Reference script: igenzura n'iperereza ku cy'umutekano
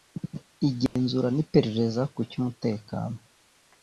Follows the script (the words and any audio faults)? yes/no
no